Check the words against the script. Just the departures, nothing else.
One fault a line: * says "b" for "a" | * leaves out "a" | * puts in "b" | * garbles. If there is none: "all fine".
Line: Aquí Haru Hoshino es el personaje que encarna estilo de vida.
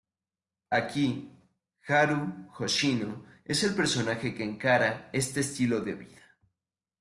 * puts in "este"